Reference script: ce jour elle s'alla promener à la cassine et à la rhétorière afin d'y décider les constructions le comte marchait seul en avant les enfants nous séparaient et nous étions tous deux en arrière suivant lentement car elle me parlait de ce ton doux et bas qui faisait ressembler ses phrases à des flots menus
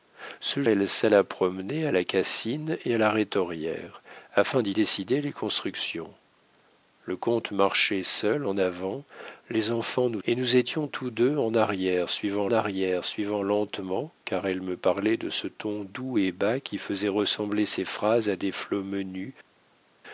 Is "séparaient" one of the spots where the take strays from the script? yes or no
yes